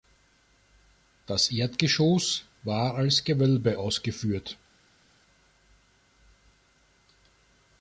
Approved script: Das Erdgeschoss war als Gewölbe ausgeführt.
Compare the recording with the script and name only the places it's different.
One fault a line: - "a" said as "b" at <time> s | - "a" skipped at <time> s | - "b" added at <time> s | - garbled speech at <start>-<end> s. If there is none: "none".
none